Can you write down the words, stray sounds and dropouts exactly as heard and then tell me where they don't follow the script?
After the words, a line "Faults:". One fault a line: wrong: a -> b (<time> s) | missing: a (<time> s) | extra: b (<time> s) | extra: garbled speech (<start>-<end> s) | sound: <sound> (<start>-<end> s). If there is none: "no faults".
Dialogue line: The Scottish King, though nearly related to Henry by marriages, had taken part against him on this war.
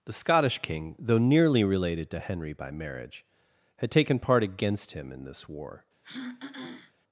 The Scottish King, though nearly related to Henry by marriage, had taken part against him in this war.
Faults:
wrong: marriages -> marriage (2.7 s)
wrong: on -> in (5.1 s)
sound: throat clearing (6.0-6.9 s)